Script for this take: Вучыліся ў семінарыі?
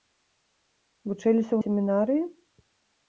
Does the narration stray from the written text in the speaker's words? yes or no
no